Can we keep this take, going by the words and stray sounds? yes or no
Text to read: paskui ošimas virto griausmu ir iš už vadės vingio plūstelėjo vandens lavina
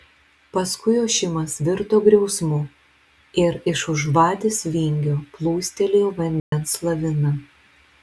no